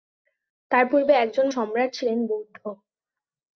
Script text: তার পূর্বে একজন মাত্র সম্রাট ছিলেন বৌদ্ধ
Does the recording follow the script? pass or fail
fail